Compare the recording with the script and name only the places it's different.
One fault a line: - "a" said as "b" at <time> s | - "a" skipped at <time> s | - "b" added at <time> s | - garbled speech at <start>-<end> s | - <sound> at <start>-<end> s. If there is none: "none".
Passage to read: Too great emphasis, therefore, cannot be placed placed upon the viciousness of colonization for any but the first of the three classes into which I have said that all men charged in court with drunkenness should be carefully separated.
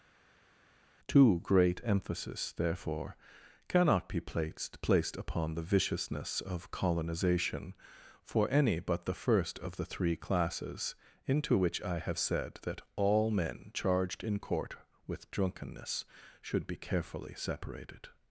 none